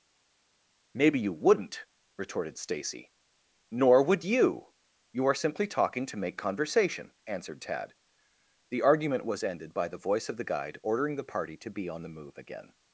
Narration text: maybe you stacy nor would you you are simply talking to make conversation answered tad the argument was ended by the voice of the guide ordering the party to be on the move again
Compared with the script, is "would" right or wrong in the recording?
right